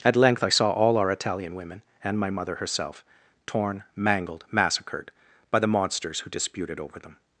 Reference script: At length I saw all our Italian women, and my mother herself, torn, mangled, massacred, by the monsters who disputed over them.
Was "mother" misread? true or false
false